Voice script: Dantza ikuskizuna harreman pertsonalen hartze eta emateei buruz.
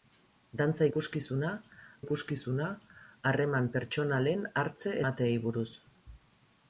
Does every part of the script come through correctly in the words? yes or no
no